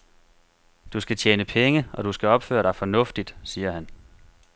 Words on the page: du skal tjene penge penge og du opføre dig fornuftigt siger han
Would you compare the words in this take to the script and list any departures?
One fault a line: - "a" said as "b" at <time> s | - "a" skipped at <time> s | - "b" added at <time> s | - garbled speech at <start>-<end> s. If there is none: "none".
- "penge" skipped at 1.9 s
- "skal" added at 2.1 s